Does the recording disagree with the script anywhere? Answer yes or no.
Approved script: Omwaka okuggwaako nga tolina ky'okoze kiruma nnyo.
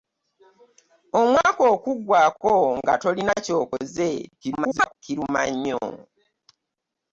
yes